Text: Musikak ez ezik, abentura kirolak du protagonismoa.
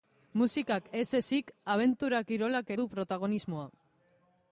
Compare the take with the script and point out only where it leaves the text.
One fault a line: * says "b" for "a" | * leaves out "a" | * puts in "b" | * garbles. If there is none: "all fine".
all fine